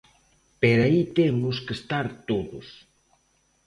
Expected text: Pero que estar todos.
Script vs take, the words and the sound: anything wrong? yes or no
yes